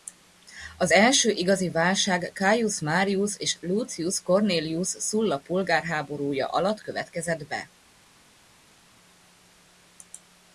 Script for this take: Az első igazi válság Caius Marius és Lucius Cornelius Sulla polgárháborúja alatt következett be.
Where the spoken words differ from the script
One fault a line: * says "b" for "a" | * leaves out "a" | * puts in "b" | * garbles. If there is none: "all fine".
all fine